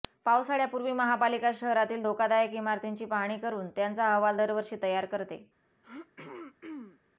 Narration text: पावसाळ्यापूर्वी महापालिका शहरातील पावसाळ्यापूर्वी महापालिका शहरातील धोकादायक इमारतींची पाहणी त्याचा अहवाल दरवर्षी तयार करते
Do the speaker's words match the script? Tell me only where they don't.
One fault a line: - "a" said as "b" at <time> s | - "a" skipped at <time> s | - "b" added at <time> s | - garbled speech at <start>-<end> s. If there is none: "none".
- "पावसाळ्यापूर्वी महापालिका शहरातील" skipped at 2.0 s
- "करून" added at 3.4 s